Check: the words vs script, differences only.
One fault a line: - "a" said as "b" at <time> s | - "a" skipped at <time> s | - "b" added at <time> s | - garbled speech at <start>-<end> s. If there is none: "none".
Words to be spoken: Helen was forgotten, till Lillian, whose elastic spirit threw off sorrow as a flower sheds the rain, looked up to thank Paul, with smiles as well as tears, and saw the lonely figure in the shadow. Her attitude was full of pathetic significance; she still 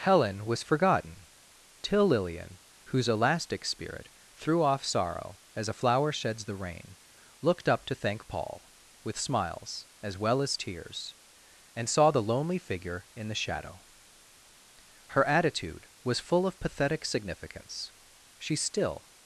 none